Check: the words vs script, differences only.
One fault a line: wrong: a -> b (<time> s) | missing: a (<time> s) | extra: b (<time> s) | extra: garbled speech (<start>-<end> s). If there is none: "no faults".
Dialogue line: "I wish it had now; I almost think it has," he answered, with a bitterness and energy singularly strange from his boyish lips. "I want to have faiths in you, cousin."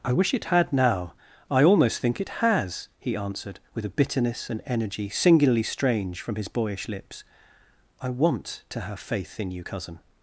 wrong: faiths -> faith (9.0 s)